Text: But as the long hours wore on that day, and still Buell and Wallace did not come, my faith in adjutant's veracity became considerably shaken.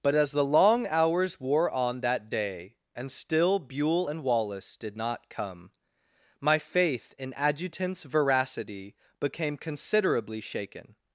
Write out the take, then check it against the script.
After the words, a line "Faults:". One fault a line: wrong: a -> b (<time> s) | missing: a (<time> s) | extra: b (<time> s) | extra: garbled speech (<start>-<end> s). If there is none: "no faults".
But as the long hours wore on that day, and still Buell and Wallace did not come, my faith in adjutant's veracity became considerably shaken.
Faults:
no faults